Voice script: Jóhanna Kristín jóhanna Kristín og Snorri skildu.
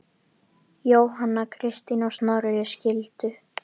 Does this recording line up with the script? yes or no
no